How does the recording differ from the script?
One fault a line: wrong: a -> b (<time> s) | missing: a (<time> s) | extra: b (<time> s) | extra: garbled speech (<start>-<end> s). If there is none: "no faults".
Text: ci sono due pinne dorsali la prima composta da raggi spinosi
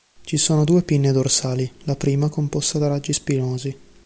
no faults